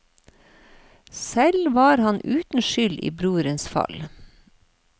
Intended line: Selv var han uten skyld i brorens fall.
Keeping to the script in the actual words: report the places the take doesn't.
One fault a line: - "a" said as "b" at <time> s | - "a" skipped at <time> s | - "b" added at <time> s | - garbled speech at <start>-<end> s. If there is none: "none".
none